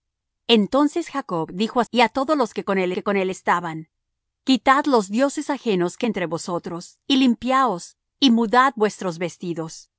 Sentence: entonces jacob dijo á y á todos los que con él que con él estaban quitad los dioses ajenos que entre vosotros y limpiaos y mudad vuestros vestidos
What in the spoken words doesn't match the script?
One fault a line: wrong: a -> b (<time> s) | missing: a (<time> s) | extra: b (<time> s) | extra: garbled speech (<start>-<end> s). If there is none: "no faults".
no faults